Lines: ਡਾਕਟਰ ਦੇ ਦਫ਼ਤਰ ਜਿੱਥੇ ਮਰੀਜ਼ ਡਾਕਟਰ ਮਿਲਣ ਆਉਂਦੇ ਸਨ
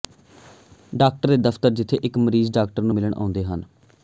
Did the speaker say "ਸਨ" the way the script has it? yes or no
no